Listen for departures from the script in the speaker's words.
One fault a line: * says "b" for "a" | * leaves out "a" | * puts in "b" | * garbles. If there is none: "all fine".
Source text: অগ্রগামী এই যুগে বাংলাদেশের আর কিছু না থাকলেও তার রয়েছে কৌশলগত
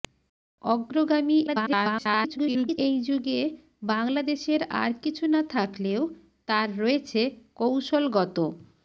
* garbles